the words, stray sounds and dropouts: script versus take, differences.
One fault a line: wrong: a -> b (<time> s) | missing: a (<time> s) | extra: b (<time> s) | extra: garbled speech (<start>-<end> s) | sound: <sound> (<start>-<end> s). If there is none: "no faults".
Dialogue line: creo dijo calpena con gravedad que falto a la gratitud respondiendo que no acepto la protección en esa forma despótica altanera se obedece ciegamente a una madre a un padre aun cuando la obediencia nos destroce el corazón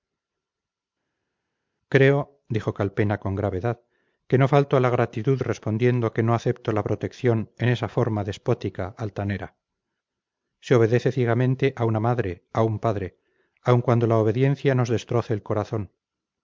extra: no (4.4 s)